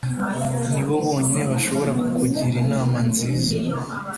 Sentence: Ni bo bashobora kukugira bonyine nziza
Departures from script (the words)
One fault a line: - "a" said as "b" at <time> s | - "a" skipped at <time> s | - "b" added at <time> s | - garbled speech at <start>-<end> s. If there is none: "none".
- "bonyine" added at 1.1 s
- "bonyine" said as "inama" at 2.6 s